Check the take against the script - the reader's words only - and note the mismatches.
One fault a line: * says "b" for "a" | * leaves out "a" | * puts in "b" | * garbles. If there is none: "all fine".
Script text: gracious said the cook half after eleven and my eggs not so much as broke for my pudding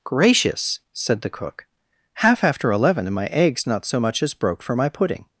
all fine